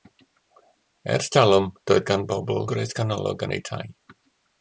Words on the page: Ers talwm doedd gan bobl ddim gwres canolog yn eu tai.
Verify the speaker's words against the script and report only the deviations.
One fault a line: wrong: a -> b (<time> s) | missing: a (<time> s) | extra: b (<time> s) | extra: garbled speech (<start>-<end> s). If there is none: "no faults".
missing: ddim (2.6 s)